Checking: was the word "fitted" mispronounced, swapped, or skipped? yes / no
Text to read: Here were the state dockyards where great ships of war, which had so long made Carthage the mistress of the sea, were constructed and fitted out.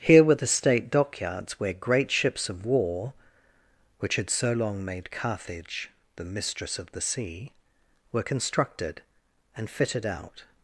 no